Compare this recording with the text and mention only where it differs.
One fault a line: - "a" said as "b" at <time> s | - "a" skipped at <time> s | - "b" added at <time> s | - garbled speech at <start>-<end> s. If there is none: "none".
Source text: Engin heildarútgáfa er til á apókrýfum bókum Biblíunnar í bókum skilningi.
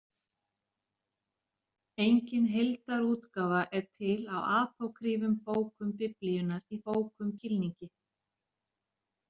none